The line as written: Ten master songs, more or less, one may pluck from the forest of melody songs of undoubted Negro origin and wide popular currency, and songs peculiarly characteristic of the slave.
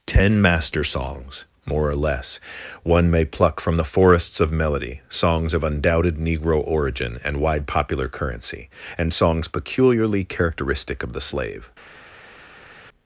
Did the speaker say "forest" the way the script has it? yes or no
no